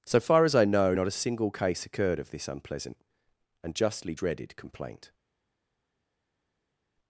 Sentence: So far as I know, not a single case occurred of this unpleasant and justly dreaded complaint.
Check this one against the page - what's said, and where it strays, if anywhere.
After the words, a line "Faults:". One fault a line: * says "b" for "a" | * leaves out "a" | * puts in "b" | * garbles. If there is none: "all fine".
So far as I know, not a single case occurred of this unpleasant and justly dreaded complaint.
Faults:
all fine